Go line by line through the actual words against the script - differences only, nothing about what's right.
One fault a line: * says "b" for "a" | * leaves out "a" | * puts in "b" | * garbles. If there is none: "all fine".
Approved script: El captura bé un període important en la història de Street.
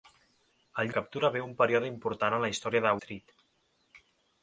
all fine